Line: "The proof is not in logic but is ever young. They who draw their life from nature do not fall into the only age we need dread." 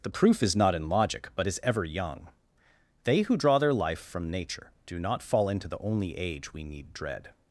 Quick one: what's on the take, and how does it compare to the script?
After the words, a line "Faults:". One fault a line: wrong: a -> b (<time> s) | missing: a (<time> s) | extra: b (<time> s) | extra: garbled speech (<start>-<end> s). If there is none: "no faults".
"The proof is not in logic but is ever young. They who draw their life from nature do not fall into the only age we need dread."
Faults:
no faults